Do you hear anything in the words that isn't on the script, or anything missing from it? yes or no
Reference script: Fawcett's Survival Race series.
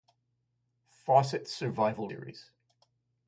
yes